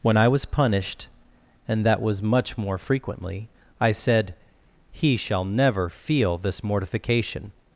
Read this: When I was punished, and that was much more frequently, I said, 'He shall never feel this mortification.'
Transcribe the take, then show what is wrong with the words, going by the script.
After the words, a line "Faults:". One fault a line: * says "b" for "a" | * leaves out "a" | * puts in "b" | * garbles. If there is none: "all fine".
When I was punished, and that was much more frequently, I said, 'He shall never feel this mortification.'
Faults:
all fine